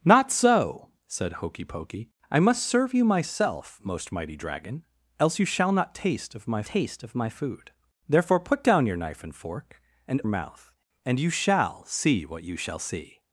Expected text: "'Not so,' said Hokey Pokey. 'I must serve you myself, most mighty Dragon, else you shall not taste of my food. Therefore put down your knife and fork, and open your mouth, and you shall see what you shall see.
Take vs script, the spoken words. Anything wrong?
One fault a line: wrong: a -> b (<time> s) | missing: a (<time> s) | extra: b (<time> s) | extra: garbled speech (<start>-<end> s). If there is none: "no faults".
extra: taste of my (6.6 s)
missing: open your (10.2 s)